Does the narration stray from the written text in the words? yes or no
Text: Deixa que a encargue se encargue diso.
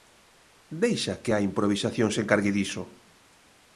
yes